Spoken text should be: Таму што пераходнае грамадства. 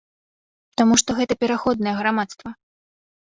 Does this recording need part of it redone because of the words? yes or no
yes